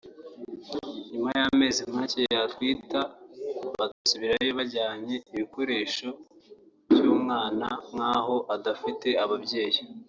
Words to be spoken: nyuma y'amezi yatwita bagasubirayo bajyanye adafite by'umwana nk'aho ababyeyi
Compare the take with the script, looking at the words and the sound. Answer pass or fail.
fail